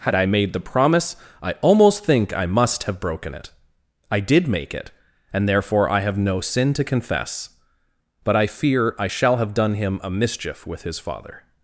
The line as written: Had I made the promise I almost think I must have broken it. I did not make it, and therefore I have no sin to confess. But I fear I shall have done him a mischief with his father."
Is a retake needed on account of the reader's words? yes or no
yes